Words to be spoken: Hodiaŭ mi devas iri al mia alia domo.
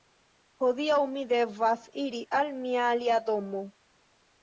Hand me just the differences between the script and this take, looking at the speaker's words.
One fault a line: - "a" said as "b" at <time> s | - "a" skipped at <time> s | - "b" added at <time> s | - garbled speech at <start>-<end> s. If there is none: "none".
none